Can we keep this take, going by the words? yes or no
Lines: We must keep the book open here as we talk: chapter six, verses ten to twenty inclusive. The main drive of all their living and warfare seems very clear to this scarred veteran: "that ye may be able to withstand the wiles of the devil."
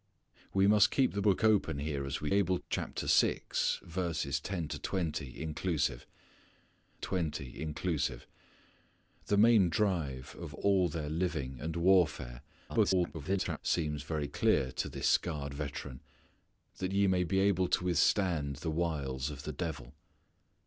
no